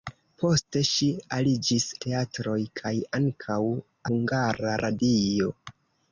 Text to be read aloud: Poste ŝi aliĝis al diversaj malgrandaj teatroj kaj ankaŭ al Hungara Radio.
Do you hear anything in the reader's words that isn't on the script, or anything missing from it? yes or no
yes